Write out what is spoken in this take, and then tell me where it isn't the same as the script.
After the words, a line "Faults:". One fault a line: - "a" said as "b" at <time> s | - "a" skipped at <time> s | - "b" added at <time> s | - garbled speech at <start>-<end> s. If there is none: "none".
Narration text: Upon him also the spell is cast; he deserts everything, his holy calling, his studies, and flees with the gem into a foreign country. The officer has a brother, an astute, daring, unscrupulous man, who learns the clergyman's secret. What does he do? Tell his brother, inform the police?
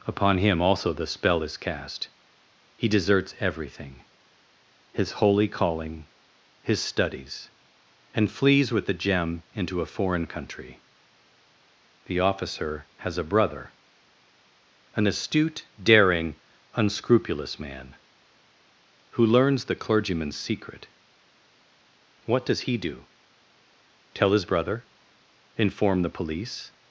Upon him also the spell is cast; he deserts everything, his holy calling, his studies, and flees with the gem into a foreign country. The officer has a brother, an astute, daring, unscrupulous man, who learns the clergyman's secret. What does he do? Tell his brother, inform the police?
Faults:
none